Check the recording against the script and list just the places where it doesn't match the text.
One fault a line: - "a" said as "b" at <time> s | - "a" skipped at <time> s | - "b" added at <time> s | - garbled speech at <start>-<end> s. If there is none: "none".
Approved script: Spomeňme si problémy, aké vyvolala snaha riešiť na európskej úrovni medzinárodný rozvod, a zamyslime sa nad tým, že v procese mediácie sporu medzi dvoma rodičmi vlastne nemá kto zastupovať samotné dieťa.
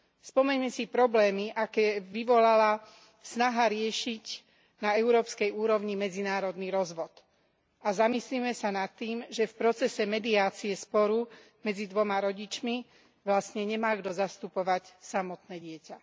none